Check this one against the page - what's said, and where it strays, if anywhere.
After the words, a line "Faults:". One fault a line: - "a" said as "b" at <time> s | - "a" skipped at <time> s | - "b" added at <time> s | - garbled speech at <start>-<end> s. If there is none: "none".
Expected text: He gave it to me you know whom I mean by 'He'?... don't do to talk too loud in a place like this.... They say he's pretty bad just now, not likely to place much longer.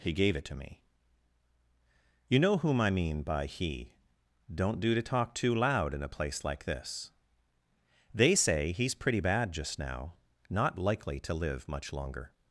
He gave it to me you know whom I mean by 'He'?... don't do to talk too loud in a place like this.... They say he's pretty bad just now, not likely to live much longer.
Faults:
- "place" said as "live" at 11.3 s